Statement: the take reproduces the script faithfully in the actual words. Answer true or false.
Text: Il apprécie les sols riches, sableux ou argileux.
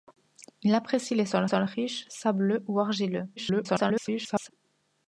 false